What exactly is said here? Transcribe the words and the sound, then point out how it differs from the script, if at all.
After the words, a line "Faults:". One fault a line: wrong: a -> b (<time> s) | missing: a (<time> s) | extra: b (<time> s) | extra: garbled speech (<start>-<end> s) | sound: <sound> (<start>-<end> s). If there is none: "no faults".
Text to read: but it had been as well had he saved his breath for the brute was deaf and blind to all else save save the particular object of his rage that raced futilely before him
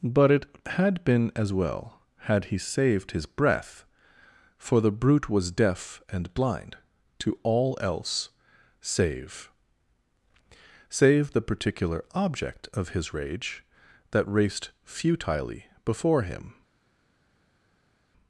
but it had been as well had he saved his breath for the brute was deaf and blind to all else save save the particular object of his rage that raced futilely before him
Faults:
no faults